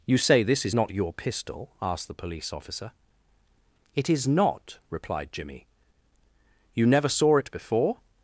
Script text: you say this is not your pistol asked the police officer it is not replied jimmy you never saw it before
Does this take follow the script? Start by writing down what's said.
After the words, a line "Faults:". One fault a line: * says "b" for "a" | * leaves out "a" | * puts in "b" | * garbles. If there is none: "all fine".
you say this is not your pistol asked the police officer it is not replied jimmy you never saw it before
Faults:
all fine